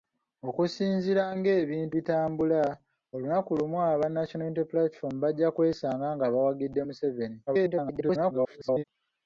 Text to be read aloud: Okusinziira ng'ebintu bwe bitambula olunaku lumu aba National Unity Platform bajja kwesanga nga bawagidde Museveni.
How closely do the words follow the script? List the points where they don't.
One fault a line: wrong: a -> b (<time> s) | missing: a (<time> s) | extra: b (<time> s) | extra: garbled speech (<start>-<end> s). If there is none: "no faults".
missing: bwe (1.9 s)
extra: garbled speech (7.5-8.8 s)